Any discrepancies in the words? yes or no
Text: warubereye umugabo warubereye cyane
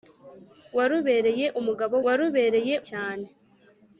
no